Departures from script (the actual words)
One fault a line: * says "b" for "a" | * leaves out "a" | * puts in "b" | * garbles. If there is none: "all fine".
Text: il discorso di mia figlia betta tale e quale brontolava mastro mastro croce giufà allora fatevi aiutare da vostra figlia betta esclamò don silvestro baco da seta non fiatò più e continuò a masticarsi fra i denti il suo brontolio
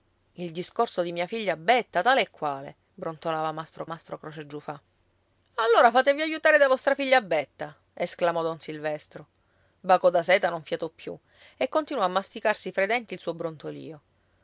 all fine